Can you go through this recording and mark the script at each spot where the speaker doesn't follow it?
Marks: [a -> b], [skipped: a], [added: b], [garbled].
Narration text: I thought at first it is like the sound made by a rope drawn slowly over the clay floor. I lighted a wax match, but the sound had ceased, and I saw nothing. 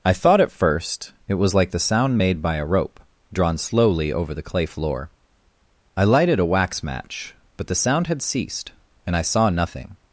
I thought at first it [is -> was] like the sound made by a rope drawn slowly over the clay floor. I lighted a wax match, but the sound had ceased, and I saw nothing.